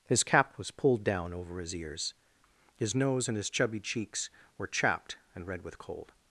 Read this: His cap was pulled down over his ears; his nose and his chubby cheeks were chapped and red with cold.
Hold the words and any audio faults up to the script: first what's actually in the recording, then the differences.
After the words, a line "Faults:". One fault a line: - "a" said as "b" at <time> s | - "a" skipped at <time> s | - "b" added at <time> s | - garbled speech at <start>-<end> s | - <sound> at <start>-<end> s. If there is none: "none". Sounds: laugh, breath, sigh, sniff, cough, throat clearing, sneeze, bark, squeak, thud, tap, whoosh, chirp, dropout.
His cap was pulled down over his ears; his nose and his chubby cheeks were chapped and red with cold.
Faults:
none